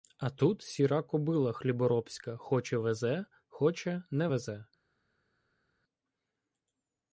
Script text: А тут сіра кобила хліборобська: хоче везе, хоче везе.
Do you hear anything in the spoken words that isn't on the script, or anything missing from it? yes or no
yes